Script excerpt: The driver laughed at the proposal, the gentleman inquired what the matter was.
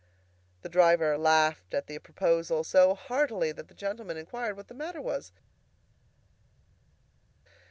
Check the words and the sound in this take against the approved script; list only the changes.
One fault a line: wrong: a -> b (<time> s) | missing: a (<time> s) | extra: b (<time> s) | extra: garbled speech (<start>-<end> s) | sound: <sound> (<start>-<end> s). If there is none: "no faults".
extra: so heartily that (2.6 s)